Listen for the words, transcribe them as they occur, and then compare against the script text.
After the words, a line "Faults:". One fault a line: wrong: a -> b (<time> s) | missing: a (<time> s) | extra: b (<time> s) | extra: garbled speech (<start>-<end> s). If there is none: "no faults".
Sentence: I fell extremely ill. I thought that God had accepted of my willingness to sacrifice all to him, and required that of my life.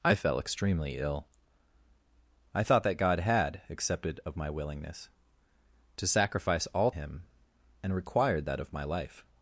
I fell extremely ill. I thought that God had accepted of my willingness to sacrifice all him, and required that of my life.
Faults:
missing: to (6.9 s)